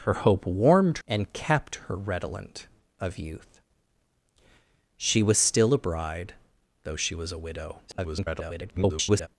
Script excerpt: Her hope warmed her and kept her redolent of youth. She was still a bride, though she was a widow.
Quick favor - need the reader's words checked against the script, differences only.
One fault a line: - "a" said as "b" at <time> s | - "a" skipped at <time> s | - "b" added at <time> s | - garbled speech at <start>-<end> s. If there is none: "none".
- "her" skipped at 1.0 s
- garbled speech at 7.9-9.3 s